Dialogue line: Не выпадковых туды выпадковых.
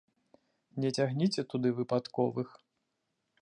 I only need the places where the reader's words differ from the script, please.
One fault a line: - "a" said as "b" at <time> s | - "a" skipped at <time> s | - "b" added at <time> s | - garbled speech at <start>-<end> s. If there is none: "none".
- "выпадковых" said as "цягніце" at 1.0 s